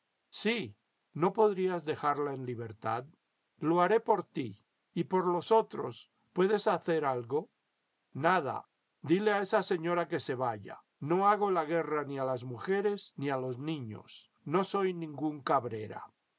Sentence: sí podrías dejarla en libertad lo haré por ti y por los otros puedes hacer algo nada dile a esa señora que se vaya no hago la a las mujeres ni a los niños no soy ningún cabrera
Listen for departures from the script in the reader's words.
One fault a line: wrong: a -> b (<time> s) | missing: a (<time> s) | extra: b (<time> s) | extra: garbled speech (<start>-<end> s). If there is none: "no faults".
extra: no (1.1 s)
extra: guerra ni (11.7 s)